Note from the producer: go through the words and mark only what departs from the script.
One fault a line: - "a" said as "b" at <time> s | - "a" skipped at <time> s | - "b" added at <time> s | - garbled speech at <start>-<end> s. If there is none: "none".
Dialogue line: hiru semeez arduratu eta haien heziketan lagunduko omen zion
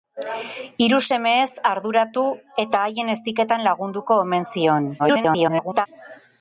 - garbled speech at 5.0-5.9 s